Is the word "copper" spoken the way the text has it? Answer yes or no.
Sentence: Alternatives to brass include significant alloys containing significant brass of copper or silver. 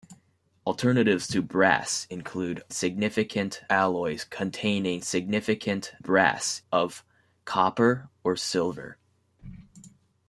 yes